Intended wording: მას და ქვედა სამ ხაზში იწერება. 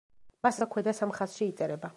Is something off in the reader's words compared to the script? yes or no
no